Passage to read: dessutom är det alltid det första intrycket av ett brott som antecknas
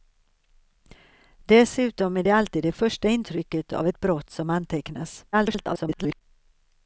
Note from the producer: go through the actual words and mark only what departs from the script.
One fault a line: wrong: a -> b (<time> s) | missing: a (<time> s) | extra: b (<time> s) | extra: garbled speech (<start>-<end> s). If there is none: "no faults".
extra: garbled speech (5.3-6.2 s)